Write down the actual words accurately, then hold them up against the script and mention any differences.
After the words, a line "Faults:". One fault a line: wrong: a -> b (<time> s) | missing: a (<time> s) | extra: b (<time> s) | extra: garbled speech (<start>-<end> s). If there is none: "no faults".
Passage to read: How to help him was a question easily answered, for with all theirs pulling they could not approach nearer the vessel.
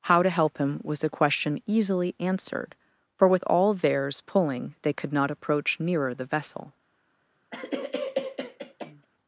How to help him was a question easily answered, for with all theirs pulling they could not approach nearer the vessel.
Faults:
no faults